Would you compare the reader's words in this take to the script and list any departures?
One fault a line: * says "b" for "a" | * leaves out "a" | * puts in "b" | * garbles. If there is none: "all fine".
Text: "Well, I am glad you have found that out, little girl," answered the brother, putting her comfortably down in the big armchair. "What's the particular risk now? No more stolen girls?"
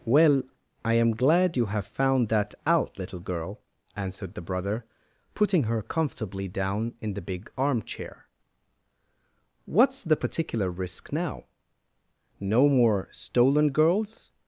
all fine